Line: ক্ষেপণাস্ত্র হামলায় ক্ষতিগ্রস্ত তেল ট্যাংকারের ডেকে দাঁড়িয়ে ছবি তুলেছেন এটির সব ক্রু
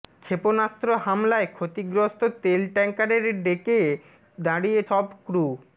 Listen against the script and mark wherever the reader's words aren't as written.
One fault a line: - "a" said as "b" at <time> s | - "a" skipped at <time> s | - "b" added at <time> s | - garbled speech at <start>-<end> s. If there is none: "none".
- "ছবি তুলেছেন এটির" skipped at 4.8 s